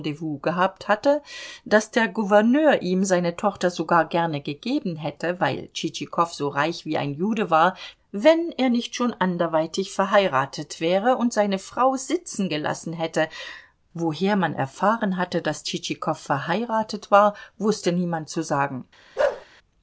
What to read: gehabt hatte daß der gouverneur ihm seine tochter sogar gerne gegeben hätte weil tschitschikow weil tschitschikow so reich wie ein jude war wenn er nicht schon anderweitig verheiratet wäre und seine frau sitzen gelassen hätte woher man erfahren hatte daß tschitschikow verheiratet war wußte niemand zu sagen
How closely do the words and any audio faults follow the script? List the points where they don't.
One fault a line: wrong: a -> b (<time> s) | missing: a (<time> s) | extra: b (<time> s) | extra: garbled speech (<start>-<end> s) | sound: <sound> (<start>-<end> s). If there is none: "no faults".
missing: weil tschitschikow (6.3 s)
sound: bark (19.2-19.5 s)